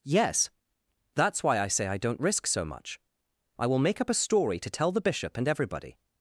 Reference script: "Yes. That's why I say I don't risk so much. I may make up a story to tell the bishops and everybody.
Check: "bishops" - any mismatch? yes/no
yes